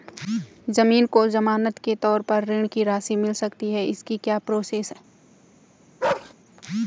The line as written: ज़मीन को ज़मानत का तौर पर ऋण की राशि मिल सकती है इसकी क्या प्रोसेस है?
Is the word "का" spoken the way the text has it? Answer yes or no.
no